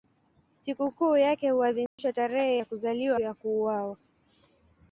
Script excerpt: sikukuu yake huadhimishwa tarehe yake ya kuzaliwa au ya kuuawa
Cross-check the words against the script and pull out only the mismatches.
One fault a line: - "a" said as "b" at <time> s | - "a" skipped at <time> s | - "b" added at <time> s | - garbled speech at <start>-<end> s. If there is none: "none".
- "yake" skipped at 2.6 s
- "au" skipped at 3.2 s